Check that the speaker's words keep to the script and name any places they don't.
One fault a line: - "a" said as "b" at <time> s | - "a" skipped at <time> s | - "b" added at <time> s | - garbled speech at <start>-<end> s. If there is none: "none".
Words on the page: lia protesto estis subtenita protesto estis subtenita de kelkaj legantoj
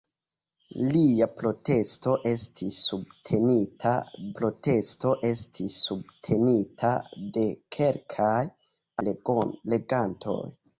none